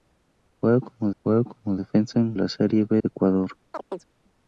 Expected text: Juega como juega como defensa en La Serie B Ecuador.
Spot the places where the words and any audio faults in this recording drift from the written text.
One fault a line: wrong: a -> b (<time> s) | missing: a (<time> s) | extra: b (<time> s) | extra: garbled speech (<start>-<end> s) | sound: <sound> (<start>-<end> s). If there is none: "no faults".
sound: chirp (3.7-4.1 s)